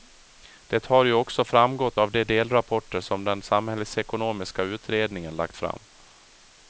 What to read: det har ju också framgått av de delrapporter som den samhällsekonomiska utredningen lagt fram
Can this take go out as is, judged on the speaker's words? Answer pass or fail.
pass